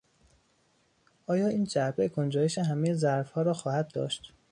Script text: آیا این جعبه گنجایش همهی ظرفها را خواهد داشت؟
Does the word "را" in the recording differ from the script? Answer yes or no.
no